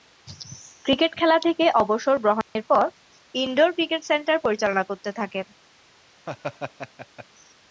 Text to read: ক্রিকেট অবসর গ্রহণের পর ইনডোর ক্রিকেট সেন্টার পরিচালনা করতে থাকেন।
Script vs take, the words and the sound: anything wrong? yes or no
yes